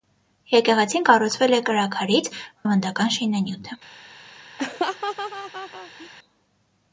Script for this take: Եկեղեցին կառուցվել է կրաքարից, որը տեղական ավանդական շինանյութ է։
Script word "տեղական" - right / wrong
wrong